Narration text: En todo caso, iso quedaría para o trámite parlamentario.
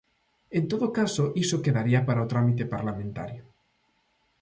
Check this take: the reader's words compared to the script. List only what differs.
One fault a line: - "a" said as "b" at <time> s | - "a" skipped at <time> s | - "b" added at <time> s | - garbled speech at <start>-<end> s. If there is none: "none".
none